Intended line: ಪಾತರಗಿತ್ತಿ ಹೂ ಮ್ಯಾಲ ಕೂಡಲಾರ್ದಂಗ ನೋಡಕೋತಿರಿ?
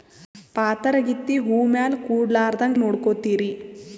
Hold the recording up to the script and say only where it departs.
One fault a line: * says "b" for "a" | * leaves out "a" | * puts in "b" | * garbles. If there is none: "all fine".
all fine